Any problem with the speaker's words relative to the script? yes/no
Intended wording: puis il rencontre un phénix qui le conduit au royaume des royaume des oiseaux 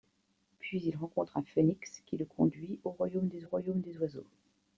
no